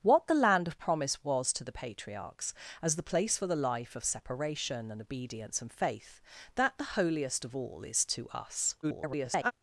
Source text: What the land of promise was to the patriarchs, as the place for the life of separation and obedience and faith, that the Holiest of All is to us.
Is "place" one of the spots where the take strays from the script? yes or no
no